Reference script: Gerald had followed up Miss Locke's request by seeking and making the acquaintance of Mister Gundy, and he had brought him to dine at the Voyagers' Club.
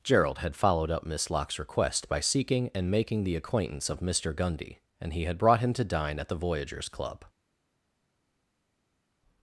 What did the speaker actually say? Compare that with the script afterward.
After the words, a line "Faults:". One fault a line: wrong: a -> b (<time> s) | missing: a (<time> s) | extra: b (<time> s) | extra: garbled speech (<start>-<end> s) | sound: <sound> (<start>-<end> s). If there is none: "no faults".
Gerald had followed up Miss Locke's request by seeking and making the acquaintance of Mister Gundy, and he had brought him to dine at the Voyagers' Club.
Faults:
no faults